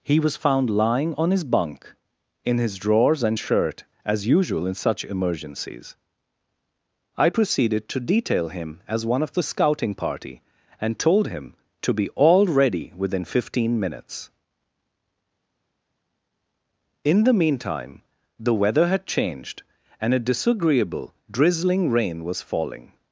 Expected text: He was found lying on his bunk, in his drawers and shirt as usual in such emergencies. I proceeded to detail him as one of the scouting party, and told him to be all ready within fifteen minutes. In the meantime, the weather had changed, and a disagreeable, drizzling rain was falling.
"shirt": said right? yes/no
yes